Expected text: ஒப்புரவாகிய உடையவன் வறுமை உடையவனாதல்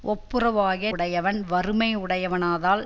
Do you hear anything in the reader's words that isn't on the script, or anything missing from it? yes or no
no